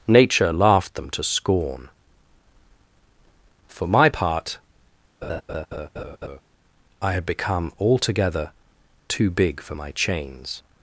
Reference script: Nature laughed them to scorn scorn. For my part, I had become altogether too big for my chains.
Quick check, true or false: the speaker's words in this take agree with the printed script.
false